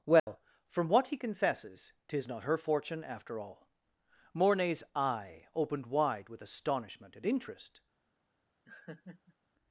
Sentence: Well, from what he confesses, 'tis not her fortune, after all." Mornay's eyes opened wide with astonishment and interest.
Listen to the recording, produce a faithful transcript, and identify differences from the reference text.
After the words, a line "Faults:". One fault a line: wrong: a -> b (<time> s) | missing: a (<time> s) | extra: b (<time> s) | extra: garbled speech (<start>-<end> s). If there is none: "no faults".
Well, from what he confesses, 'tis not her fortune, after all." Mornay's eye opened wide with astonishment and interest.
Faults:
wrong: eyes -> eye (5.0 s)